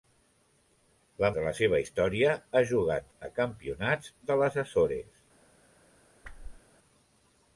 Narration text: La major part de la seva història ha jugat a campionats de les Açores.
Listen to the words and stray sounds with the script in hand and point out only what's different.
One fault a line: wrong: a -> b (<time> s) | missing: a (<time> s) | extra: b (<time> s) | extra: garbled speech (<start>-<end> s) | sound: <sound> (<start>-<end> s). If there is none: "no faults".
missing: major part (1.3 s)
sound: whoosh (6.2-6.6 s)